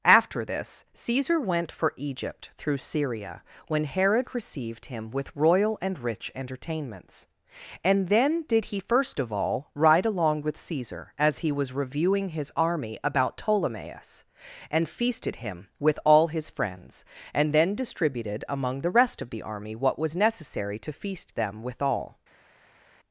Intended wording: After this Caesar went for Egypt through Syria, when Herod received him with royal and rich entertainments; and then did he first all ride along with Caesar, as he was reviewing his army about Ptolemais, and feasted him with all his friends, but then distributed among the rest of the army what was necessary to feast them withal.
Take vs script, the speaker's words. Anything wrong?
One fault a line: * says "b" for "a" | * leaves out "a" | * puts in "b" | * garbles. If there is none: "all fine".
* puts in "of"
* says "and" for "but"